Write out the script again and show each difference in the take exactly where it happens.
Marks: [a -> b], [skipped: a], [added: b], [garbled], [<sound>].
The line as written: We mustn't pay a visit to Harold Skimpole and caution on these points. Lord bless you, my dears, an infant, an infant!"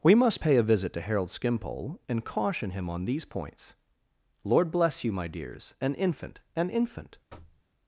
We [mustn't -> must] pay a visit to Harold Skimpole and caution [added: him] on these points. Lord bless you, my dears, an infant, an infant!" [thud]